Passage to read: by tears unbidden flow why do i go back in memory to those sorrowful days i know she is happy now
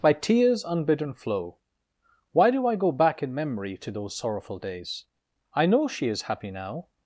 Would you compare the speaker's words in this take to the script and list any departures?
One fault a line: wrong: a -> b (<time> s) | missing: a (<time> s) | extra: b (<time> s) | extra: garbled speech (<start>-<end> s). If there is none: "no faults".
no faults